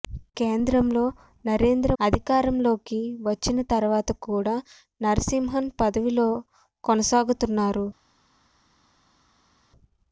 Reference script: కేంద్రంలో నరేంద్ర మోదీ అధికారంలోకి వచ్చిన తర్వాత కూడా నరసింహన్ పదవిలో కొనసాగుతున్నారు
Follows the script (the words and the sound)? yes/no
no